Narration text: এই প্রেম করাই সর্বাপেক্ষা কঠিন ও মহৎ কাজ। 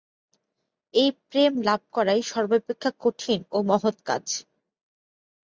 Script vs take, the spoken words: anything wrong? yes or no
yes